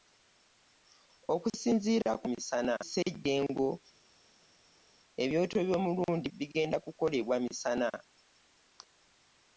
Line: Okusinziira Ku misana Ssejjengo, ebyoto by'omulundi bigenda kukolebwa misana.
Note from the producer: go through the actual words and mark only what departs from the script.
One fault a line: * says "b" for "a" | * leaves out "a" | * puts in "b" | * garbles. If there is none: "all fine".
all fine